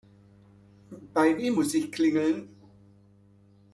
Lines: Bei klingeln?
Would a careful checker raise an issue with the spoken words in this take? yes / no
yes